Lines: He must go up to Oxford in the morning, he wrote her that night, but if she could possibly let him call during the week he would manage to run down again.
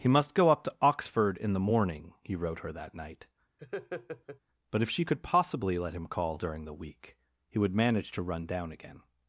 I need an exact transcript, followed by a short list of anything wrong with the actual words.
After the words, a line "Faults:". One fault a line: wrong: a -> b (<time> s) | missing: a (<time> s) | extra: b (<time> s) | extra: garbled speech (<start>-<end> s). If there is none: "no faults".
He must go up to Oxford in the morning, he wrote her that night, but if she could possibly let him call during the week he would manage to run down again.
Faults:
no faults